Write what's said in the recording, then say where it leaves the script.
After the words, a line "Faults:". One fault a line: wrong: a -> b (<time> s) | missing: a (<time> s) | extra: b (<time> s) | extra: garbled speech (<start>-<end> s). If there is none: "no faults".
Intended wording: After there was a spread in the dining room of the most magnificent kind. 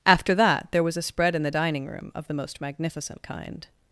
After that, there was a spread in the dining room of the most magnificent kind.
Faults:
extra: that (0.3 s)